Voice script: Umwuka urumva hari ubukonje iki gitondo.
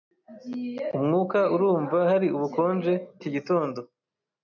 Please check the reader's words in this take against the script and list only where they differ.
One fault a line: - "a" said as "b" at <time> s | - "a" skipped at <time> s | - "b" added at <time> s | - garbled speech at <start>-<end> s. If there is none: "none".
none